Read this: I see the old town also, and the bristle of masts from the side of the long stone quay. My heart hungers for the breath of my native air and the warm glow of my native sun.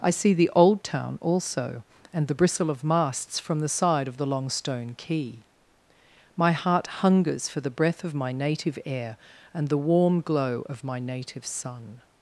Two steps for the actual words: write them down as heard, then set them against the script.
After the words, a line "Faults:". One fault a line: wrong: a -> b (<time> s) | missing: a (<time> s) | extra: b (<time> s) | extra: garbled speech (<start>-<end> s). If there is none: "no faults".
I see the old town also, and the bristle of masts from the side of the long stone quay. My heart hungers for the breath of my native air and the warm glow of my native sun.
Faults:
no faults